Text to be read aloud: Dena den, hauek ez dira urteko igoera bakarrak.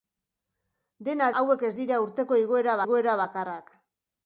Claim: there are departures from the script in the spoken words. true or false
true